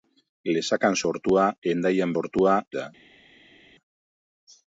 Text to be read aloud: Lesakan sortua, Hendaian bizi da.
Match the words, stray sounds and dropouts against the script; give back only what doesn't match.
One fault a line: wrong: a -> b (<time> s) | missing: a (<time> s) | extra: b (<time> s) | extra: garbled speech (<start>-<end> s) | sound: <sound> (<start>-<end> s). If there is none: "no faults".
wrong: bizi -> sortua (2.1 s)